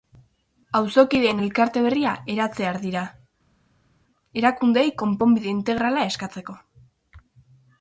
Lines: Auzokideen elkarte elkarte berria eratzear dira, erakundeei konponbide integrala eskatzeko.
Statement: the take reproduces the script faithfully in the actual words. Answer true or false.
false